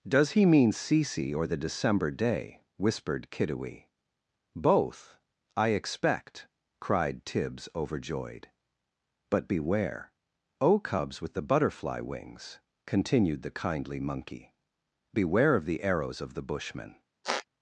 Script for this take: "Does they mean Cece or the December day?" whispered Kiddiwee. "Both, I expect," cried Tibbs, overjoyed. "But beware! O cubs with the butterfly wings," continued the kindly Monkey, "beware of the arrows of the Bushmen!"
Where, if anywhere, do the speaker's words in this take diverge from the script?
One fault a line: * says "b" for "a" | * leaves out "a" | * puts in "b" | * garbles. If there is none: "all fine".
* says "he" for "they"